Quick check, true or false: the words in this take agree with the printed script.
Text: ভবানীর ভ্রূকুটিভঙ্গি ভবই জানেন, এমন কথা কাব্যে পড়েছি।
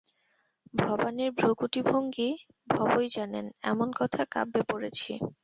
true